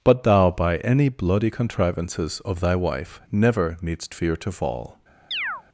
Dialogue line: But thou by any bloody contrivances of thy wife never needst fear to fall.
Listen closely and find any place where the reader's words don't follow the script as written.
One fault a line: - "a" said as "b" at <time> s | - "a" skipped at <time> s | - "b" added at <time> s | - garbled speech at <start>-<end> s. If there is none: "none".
none